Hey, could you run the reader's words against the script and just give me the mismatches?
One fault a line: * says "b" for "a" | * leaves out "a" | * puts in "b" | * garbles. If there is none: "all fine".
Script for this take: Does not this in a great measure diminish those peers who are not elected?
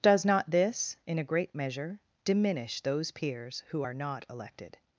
all fine